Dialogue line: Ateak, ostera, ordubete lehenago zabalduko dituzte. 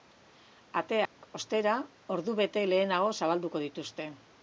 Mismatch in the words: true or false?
false